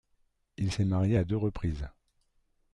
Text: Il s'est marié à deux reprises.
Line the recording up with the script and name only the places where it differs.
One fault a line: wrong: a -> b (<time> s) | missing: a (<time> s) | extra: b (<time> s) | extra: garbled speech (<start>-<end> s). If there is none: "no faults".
no faults